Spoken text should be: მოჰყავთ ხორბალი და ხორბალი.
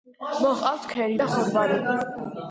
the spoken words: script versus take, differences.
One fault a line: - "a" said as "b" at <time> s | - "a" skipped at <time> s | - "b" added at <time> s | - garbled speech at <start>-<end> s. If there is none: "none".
- "ხორბალი" said as "ქერი" at 0.9 s